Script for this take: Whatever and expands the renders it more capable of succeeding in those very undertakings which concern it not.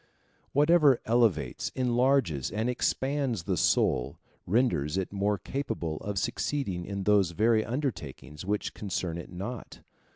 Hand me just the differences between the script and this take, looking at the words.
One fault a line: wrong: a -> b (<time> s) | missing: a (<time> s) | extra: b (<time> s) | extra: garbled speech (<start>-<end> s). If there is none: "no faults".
extra: elevates enlarges (1.1 s)
extra: soul (3.5 s)